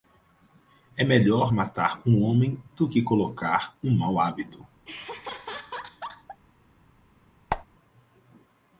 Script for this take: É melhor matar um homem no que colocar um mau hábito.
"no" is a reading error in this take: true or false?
true